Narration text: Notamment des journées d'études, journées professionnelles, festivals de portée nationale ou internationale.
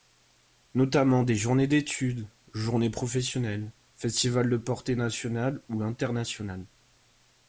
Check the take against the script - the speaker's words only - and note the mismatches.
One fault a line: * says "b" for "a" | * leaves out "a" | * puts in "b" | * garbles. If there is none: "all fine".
all fine